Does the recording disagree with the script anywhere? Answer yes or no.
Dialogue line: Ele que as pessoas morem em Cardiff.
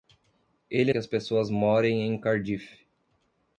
no